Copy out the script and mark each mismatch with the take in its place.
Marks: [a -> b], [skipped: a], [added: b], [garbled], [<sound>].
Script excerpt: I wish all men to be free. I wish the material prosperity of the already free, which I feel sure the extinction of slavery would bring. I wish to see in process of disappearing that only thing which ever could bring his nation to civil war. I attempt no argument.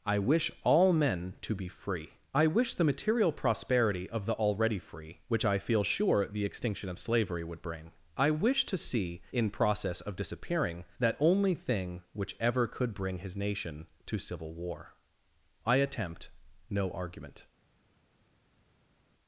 I wish all men to be free. I wish the material prosperity of the already free, which I feel sure the extinction of slavery would bring. I wish to see in process of disappearing that only thing which ever could bring his nation to civil war. I attempt no argument.